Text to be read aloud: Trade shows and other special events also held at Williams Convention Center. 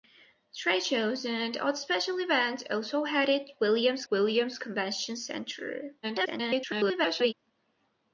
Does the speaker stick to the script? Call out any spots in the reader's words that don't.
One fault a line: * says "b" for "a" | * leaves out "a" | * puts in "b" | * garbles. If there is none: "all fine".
* puts in "Williams"
* garbles